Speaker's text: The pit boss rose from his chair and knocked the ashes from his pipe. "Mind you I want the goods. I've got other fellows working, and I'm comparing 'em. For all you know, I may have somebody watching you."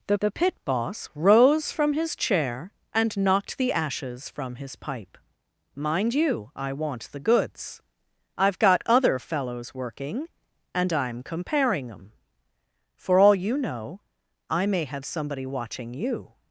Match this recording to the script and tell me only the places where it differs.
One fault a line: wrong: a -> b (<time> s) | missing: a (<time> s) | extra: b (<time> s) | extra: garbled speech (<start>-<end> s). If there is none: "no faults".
extra: the (0.2 s)